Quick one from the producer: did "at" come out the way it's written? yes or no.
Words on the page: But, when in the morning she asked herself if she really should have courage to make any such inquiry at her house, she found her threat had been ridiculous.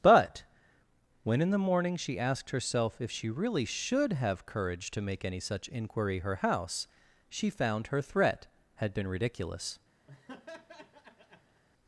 no